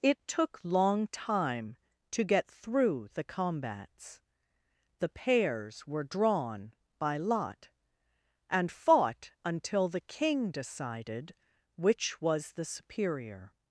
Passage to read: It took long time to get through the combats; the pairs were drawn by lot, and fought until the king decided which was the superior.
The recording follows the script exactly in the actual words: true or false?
true